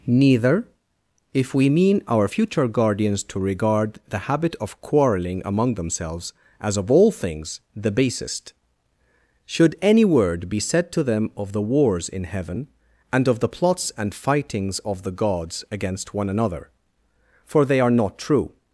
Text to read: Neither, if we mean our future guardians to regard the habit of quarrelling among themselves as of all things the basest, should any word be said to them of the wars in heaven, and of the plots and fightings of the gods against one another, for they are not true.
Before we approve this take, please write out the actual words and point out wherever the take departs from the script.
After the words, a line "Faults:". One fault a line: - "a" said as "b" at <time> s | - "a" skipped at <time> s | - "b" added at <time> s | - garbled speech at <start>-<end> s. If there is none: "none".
Neither, if we mean our future guardians to regard the habit of quarrelling among themselves as of all things the basest, should any word be said to them of the wars in heaven, and of the plots and fightings of the gods against one another, for they are not true.
Faults:
none